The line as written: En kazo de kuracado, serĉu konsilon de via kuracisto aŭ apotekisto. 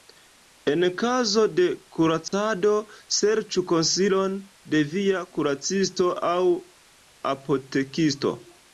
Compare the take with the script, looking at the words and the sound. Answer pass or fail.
fail